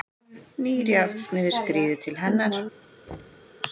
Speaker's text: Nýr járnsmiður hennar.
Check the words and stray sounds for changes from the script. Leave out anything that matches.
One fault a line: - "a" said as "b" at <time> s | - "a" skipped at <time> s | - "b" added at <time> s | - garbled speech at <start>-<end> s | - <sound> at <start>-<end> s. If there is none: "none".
- "skríður til" added at 1.6 s
- thud at 3.1-3.5 s